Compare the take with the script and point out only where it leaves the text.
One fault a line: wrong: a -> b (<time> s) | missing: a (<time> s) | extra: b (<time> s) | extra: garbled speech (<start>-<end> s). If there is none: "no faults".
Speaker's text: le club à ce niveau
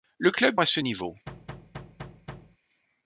no faults